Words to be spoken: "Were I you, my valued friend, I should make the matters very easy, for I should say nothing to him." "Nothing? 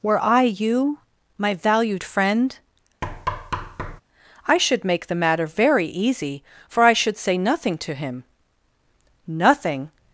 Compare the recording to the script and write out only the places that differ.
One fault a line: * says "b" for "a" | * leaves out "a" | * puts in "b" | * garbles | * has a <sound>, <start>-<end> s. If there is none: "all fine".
* has a thud, 3.0-4.0 s
* says "matter" for "matters"